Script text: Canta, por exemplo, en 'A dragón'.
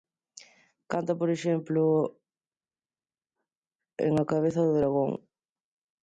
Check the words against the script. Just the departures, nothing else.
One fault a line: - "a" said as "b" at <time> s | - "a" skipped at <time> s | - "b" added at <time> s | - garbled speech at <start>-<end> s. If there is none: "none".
- "cabeza do" added at 4.3 s